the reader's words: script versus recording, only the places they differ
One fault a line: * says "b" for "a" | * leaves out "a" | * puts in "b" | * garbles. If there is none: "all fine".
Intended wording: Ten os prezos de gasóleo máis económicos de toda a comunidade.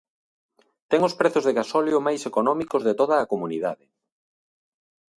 all fine